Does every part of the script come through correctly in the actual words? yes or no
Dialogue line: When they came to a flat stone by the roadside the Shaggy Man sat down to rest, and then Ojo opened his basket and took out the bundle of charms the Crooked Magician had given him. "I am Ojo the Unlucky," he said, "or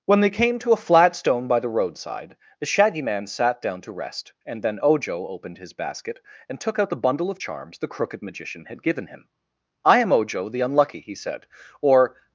yes